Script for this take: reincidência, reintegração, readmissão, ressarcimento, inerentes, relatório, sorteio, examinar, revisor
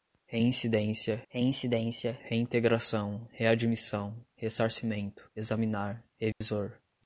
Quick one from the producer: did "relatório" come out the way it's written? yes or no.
no